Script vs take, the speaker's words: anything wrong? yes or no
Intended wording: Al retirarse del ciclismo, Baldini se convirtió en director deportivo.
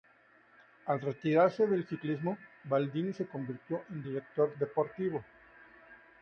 no